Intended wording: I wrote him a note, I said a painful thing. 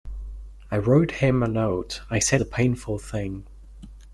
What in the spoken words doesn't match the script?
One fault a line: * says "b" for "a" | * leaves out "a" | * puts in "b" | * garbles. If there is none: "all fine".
all fine